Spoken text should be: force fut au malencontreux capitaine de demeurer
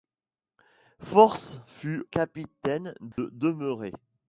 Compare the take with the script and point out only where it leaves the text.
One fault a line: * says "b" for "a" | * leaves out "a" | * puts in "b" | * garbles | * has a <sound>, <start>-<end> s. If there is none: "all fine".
* leaves out "au malencontreux"
* has a dropout, 3.1-3.2 s